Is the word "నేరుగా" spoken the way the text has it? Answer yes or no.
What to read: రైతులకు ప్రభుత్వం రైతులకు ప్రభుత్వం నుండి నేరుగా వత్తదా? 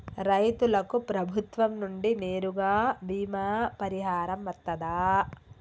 no